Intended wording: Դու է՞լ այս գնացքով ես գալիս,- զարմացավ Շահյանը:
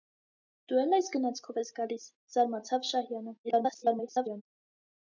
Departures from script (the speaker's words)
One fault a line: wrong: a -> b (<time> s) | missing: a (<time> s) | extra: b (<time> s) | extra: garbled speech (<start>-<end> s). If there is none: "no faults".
extra: garbled speech (3.4-4.4 s)